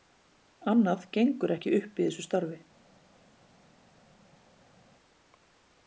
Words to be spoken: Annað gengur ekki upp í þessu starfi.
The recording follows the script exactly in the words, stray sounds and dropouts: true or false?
true